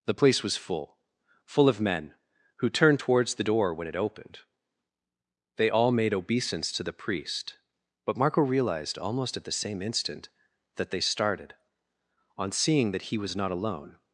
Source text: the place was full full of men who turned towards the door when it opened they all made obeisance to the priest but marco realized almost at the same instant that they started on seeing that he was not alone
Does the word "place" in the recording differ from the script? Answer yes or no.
no